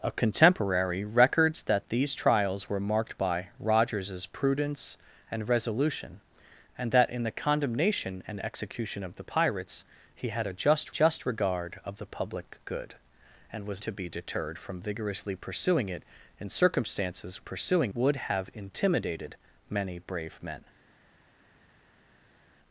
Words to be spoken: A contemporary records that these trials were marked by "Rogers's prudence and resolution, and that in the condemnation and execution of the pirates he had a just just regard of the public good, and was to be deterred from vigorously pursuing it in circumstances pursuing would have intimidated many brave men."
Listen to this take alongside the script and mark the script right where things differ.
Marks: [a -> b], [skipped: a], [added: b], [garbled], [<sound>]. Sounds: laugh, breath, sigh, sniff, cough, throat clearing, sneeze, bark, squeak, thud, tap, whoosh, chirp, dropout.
A contemporary records that these trials were marked by "Rogers's prudence and resolution, and that in the condemnation and execution of the pirates he had a just just regard of the public good, and was to be deterred from vigorously pursuing it in circumstances pursuing would have intimidated many brave men."